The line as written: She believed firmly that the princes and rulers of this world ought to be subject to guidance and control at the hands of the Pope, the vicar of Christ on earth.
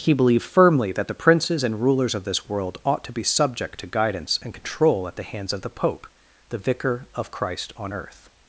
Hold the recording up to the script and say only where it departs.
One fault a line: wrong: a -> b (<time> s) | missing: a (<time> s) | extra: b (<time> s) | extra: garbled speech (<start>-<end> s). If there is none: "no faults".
wrong: She -> He (0.0 s)